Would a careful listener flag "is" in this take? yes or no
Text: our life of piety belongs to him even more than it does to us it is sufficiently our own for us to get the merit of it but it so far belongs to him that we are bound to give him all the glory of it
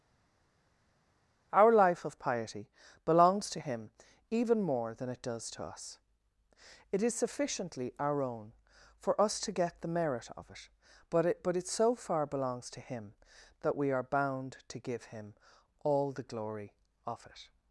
no